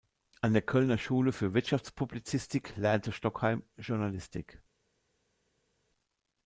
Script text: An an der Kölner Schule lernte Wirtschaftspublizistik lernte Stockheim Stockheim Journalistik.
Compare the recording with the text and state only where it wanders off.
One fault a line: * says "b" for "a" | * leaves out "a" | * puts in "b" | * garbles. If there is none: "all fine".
* leaves out "an"
* says "für" for "lernte"
* leaves out "Stockheim"